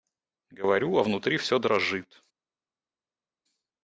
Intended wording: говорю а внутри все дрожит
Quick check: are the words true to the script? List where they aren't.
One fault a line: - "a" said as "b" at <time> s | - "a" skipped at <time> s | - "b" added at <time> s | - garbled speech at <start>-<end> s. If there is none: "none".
none